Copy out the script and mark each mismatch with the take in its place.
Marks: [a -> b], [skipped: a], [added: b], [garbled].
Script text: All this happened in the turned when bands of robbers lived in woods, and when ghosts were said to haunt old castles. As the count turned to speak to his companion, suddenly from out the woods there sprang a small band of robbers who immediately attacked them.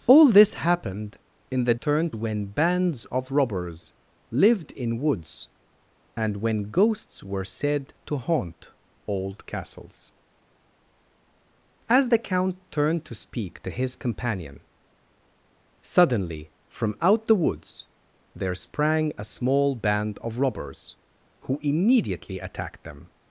All this happened in the turned when bands of robbers lived in woods, and when ghosts were said to haunt old castles. As the count turned to speak to his companion, suddenly from out the woods there sprang a small band of robbers who immediately attacked them.